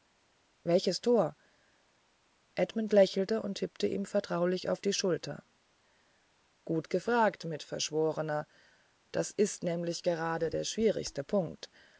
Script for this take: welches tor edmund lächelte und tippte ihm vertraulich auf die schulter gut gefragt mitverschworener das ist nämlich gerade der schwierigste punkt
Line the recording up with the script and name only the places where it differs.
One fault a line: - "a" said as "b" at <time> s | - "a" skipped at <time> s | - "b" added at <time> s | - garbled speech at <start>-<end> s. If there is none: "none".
none